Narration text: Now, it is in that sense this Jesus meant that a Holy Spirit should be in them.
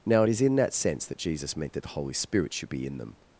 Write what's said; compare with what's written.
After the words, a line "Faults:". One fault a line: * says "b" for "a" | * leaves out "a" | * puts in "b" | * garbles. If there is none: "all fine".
Now, it is in that sense that Jesus meant that the Holy Spirit should be in them.
Faults:
* says "that" for "this"
* says "the" for "a"